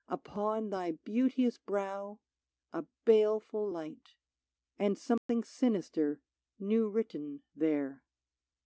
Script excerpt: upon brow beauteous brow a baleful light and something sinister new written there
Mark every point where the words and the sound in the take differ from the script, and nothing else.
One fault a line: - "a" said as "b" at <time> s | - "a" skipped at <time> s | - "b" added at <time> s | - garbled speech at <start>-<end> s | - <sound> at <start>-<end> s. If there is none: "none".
- "brow" said as "thy" at 0.7 s
- dropout at 5.2-5.3 s